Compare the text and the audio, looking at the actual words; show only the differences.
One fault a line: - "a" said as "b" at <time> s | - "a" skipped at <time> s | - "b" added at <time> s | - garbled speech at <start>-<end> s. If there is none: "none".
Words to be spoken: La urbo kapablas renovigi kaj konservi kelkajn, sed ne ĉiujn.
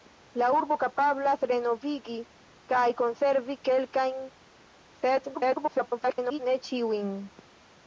- garbled speech at 5.3-6.4 s